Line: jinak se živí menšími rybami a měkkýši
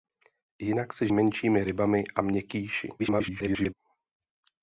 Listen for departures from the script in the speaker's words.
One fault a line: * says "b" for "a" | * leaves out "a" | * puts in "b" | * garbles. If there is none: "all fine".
* leaves out "živí"
* garbles